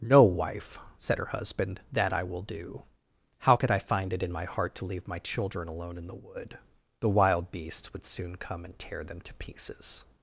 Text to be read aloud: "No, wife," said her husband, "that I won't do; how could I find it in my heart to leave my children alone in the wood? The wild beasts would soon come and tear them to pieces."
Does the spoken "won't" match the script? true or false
false